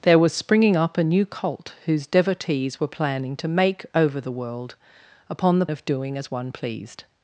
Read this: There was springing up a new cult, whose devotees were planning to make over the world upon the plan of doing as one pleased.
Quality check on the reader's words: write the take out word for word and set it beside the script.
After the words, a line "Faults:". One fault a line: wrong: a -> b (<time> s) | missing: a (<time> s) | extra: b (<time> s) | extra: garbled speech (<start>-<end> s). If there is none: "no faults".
There was springing up a new cult, whose devotees were planning to make over the world upon the of doing as one pleased.
Faults:
missing: plan (5.7 s)